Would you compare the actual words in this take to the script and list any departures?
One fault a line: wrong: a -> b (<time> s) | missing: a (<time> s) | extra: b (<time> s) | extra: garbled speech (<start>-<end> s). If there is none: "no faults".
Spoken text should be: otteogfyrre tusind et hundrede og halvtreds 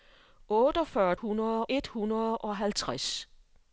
wrong: tusind -> hundrede (1.1 s)